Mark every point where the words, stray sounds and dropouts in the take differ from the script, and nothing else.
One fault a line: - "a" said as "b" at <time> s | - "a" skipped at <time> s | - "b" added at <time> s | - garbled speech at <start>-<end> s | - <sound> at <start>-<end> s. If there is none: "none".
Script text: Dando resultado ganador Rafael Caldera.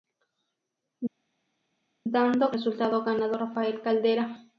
none